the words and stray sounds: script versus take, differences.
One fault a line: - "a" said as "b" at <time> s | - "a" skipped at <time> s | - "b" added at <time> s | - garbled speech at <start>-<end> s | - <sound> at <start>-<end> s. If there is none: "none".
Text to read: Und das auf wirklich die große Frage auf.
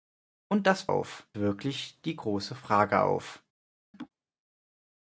- laugh at 3.9-4.1 s